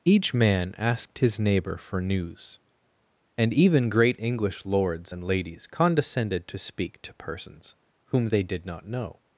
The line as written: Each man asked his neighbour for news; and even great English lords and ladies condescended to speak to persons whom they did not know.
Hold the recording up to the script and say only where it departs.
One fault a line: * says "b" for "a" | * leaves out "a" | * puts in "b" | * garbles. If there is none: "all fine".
all fine